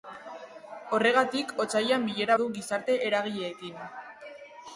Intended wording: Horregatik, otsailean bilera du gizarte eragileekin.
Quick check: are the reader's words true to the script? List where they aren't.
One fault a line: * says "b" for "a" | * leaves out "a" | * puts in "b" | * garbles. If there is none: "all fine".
all fine